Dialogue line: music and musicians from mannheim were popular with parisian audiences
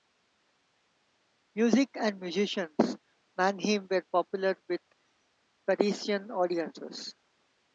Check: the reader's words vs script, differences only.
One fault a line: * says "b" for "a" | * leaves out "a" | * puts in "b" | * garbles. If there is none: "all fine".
* leaves out "from"